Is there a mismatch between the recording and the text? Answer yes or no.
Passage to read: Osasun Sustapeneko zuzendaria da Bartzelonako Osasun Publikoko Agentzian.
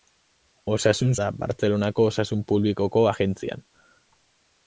yes